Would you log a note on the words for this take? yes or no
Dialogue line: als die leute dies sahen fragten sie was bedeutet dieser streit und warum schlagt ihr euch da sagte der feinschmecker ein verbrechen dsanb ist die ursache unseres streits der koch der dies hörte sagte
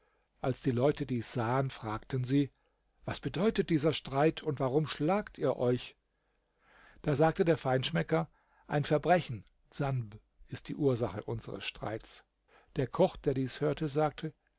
no